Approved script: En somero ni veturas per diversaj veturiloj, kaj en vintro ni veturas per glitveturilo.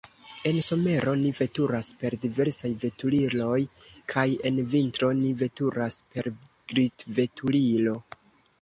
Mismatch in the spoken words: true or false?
false